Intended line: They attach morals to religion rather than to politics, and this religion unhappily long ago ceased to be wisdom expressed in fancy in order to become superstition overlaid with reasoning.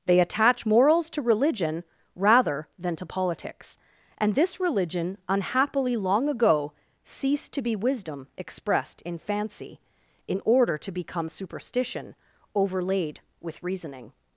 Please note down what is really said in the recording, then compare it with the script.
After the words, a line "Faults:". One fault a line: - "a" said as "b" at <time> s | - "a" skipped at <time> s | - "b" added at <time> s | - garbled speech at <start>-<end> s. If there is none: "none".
They attach morals to religion rather than to politics, and this religion unhappily long ago ceased to be wisdom expressed in fancy in order to become superstition overlaid with reasoning.
Faults:
none